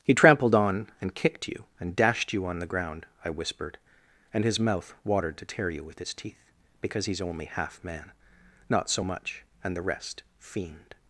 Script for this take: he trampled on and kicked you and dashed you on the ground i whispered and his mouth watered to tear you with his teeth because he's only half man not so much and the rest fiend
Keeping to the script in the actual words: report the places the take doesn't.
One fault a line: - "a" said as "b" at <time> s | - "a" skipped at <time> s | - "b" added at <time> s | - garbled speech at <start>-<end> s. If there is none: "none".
none